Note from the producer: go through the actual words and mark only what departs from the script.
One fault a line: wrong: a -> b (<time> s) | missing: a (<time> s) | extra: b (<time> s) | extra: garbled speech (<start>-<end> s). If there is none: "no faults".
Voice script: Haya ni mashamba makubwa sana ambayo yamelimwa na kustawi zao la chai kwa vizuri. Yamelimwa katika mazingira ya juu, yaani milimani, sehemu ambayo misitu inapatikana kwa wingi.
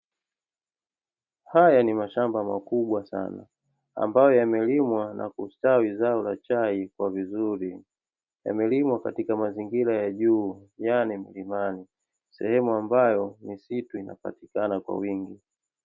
no faults